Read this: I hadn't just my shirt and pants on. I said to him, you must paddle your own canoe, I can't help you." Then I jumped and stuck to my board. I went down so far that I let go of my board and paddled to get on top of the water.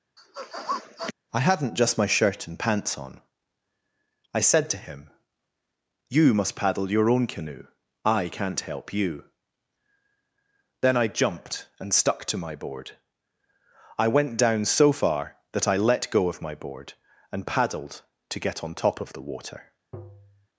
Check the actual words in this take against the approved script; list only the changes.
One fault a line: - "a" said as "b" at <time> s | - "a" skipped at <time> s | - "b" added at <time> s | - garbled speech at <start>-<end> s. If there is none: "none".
none